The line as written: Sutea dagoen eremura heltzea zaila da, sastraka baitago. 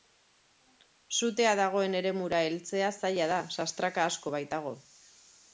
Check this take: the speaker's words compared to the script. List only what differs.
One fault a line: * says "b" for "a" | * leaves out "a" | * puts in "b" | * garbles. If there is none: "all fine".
* puts in "asko"